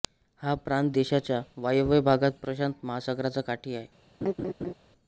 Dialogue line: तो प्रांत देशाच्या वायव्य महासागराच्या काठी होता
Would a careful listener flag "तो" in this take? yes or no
yes